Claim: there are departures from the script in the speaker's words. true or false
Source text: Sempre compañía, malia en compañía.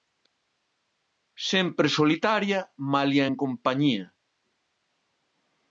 true